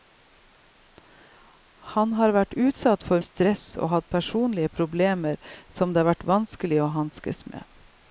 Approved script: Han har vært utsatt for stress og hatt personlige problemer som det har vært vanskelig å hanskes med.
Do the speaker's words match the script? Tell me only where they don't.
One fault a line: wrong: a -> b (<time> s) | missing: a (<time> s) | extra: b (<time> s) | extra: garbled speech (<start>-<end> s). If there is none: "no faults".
no faults